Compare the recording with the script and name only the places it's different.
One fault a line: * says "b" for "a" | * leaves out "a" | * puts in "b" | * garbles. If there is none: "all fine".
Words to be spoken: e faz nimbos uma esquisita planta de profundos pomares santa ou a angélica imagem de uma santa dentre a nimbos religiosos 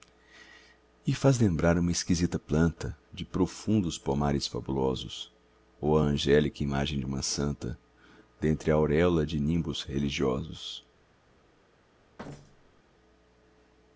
* says "lembrar" for "nimbos"
* says "fabulosos" for "santa"
* puts in "auréola de"